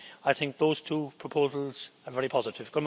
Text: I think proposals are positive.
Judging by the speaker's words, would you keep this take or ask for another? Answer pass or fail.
fail